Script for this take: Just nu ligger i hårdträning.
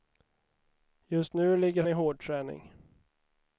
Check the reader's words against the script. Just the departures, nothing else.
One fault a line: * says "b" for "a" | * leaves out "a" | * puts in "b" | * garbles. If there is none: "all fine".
all fine